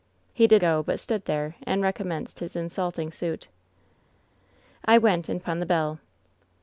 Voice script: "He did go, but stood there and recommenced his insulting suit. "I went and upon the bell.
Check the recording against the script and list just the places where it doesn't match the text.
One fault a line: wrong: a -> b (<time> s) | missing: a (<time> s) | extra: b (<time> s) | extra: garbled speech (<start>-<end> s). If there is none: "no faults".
no faults